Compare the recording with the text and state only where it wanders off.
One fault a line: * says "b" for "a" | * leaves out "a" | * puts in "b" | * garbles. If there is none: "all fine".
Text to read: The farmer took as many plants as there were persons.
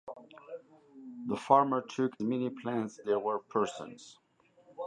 * leaves out "as"
* leaves out "as"